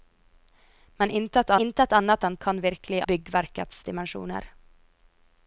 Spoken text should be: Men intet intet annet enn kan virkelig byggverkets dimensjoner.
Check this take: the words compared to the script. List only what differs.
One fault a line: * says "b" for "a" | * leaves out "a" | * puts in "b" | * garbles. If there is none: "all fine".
all fine